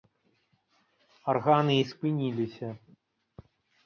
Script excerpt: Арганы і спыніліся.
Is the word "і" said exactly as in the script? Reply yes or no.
yes